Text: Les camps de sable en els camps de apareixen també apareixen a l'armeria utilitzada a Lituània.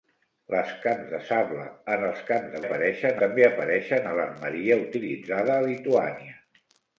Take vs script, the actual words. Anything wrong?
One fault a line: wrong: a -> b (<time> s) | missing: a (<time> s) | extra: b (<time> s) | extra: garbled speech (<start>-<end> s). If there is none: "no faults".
no faults